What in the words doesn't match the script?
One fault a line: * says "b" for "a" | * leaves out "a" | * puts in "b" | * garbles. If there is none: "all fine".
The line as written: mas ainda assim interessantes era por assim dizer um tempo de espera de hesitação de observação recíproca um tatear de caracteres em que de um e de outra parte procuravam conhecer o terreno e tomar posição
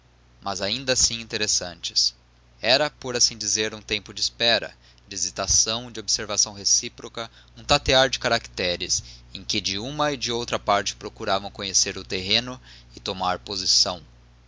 * says "uma" for "um"